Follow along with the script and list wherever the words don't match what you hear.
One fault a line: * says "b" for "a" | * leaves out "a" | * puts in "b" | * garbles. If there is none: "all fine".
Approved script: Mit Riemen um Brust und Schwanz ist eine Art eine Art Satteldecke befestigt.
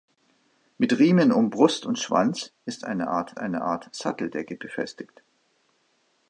all fine